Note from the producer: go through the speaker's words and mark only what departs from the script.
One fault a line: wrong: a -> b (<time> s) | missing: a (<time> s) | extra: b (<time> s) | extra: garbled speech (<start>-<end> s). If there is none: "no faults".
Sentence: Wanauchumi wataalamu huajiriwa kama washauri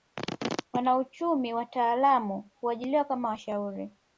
no faults